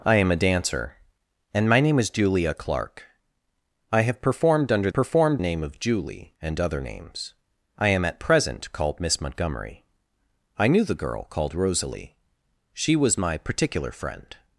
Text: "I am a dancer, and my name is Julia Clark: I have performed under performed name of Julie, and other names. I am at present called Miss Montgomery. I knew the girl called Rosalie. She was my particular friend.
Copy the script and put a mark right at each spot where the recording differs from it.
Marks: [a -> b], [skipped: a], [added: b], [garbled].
"I am a dancer, and my name is Julia Clark: I have performed under performed name of Julie, and other names. I am at present called Miss Montgomery. I knew the girl called Rosalie. She was my particular friend.